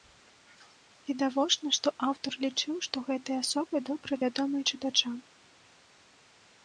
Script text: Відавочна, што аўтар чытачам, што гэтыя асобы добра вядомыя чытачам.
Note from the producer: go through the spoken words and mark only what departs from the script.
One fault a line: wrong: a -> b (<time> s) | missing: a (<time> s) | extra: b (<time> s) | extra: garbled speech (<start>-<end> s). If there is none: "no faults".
wrong: чытачам -> лічыў (2.5 s)